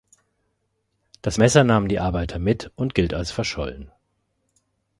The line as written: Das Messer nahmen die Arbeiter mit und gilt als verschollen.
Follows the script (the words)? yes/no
yes